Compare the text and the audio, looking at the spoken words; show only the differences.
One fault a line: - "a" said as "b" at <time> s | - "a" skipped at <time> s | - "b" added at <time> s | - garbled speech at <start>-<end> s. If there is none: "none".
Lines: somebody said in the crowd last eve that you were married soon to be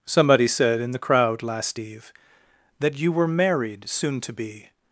none